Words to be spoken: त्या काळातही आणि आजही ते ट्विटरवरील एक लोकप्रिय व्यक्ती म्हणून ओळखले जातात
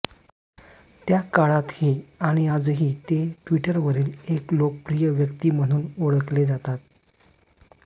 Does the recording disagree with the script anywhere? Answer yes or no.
no